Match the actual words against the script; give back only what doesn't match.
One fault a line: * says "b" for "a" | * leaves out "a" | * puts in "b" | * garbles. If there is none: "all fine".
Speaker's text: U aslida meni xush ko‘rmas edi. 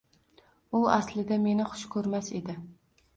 all fine